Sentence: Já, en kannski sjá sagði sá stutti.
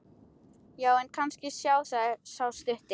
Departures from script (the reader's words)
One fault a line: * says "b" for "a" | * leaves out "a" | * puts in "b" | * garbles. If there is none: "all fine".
all fine